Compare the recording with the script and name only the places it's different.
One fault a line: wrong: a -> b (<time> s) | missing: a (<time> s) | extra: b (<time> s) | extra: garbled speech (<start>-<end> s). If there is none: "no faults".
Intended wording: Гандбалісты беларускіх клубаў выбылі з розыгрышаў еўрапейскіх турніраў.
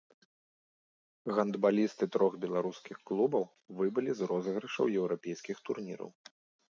extra: трох (2.1 s)